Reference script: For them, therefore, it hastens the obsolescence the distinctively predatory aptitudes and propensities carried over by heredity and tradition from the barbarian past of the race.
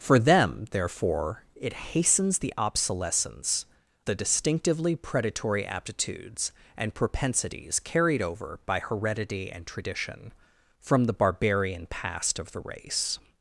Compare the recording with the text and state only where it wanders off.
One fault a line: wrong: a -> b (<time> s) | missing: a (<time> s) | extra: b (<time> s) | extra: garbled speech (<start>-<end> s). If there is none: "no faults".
no faults